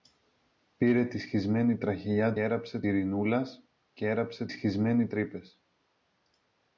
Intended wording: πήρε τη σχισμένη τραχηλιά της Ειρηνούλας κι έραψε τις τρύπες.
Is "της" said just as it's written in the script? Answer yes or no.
no